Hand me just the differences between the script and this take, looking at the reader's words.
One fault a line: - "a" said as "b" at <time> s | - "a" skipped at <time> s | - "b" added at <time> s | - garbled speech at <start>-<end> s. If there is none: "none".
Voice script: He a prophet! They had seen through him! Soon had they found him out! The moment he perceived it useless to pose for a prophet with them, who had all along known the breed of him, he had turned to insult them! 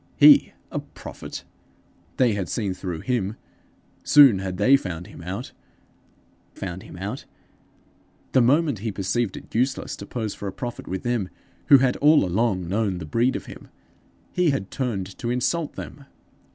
- "found him out" added at 6.5 s